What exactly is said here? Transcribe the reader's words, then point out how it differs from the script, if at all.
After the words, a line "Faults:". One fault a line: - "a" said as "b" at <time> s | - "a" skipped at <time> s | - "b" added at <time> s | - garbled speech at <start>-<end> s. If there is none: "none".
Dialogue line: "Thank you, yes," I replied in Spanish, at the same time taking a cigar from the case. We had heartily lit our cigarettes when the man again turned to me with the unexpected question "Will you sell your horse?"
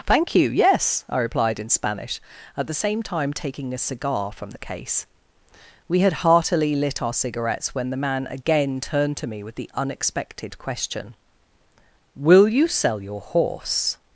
"Thank you, yes," I replied in Spanish, at the same time taking a cigar from the case. We had heartily lit our cigarettes when the man again turned to me with the unexpected question "Will you sell your horse?"
Faults:
none